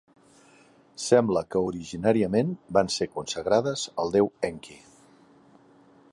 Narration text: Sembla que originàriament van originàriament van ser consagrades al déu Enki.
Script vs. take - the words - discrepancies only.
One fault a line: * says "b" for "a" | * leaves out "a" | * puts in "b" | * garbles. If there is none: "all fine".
* leaves out "originàriament van"